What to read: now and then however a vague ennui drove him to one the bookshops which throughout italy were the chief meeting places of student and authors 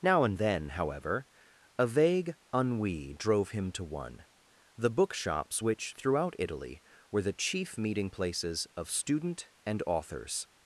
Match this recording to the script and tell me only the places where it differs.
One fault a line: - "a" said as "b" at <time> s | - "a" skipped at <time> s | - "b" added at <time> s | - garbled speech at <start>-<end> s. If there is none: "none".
none